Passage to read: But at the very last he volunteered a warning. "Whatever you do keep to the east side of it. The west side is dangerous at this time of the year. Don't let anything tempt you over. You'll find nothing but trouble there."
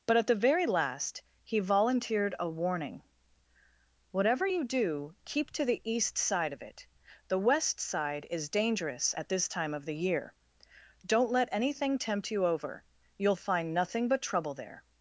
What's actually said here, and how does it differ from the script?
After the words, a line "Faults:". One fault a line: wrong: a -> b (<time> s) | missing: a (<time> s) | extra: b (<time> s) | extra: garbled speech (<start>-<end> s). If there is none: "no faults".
But at the very last he volunteered a warning. "Whatever you do keep to the east side of it. The west side is dangerous at this time of the year. Don't let anything tempt you over. You'll find nothing but trouble there."
Faults:
no faults